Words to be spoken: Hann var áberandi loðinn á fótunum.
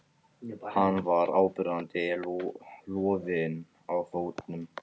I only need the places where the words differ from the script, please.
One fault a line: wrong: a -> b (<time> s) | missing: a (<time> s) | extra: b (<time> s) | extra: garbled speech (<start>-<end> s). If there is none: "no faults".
no faults